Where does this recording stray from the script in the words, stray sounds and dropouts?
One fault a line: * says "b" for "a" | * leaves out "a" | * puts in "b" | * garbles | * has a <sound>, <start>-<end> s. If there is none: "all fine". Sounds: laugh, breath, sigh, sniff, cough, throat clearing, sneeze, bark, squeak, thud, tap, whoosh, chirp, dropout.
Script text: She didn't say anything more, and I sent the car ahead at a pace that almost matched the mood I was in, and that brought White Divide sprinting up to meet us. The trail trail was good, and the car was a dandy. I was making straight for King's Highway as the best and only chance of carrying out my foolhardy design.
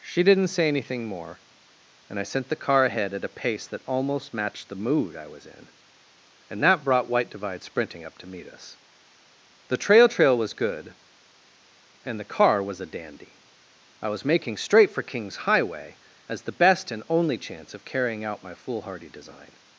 all fine